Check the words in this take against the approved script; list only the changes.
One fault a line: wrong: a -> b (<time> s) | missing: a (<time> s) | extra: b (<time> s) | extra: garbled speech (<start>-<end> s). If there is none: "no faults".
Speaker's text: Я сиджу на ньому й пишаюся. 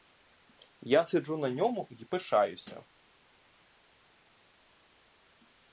no faults